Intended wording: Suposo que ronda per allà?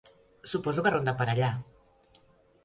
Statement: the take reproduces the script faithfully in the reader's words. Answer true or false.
true